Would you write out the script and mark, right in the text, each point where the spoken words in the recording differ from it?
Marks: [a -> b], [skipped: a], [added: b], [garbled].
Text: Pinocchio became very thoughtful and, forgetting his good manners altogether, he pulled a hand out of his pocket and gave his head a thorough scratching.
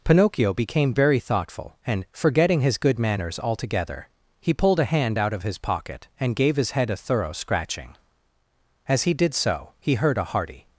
Pinocchio became very thoughtful and, forgetting his good manners altogether, he pulled a hand out of his pocket and gave his head a thorough scratching. [added: As he did so he heard a hearty]